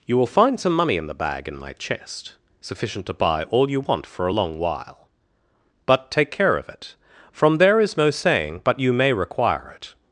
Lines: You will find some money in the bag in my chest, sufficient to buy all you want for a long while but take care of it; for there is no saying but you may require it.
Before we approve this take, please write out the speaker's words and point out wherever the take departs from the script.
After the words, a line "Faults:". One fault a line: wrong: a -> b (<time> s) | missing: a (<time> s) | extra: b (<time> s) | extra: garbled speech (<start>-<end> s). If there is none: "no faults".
You will find some money in the bag in my chest, sufficient to buy all you want for a long while but take care of it; from there is no saying but you may require it.
Faults:
wrong: for -> from (7.3 s)